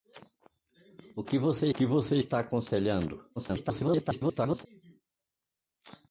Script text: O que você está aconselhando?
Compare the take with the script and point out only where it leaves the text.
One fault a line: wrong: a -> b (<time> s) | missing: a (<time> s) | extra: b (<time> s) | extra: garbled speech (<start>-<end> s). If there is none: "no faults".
extra: que você (1.7 s)
extra: garbled speech (3.4-4.7 s)